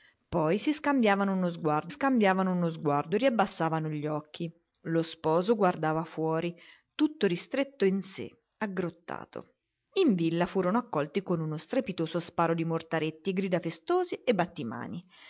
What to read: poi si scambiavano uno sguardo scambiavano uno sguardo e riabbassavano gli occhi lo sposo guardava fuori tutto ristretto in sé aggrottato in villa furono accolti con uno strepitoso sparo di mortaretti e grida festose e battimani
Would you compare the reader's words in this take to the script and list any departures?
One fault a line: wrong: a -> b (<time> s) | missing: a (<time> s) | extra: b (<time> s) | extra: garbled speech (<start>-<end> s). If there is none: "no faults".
no faults